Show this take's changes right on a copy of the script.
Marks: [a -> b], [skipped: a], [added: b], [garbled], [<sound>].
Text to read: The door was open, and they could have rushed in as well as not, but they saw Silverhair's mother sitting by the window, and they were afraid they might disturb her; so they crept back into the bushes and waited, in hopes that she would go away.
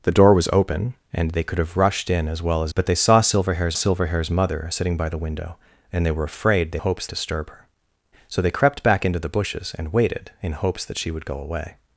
The door was open, and they could have rushed in as well as [skipped: not,] but they saw Silverhair's [added: Silverhair's] mother sitting by the window, and they were afraid they [might -> hopes] disturb her; so they crept back into the bushes and waited, in hopes that she would go away.